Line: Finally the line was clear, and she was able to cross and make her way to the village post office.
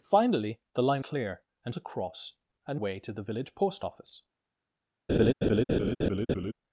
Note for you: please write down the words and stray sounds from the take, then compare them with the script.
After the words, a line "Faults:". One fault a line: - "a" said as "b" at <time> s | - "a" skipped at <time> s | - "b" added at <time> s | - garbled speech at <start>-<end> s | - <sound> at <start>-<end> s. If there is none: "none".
Finally the line clear, and to cross and way to the village post office.
Faults:
- "was" skipped at 1.1 s
- "she was able" skipped at 1.7 s
- "make her" skipped at 2.8 s
- laugh at 5.1-6.5 s